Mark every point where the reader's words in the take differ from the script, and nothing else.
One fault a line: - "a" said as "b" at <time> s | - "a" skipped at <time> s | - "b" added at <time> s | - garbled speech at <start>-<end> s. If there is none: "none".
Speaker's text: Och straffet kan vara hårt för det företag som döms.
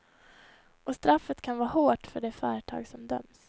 none